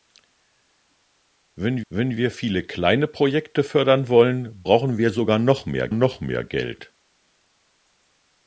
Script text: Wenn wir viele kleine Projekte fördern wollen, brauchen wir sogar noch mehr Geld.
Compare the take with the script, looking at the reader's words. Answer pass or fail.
fail